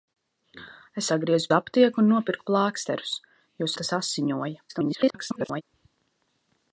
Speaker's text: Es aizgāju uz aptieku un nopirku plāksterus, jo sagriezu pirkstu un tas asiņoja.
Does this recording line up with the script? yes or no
no